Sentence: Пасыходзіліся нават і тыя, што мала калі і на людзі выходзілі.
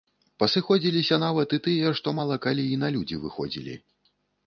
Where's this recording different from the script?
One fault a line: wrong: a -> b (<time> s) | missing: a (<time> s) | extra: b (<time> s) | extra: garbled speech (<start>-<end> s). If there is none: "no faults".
no faults